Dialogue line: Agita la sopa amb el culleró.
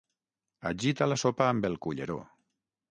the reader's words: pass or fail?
pass